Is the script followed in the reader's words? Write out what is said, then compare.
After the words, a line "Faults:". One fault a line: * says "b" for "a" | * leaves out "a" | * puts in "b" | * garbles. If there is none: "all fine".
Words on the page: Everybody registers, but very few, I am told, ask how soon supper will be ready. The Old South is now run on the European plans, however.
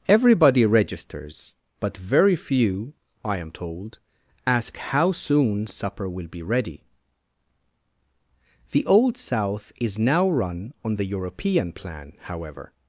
Everybody registers, but very few, I am told, ask how soon supper will be ready. The Old South is now run on the European plan, however.
Faults:
* says "plan" for "plans"